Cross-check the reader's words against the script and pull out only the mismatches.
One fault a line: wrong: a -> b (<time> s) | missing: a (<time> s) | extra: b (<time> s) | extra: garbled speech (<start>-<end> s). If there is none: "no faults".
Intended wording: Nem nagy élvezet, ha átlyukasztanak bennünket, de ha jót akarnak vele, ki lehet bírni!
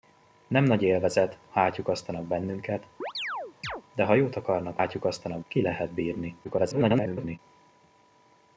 wrong: vele -> átlyukasztanak (4.8 s)
extra: garbled speech (6.4-7.4 s)